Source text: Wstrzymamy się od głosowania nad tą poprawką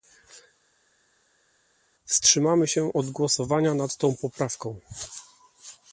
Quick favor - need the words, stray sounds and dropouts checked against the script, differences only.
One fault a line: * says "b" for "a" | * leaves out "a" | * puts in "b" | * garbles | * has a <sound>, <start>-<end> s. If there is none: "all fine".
all fine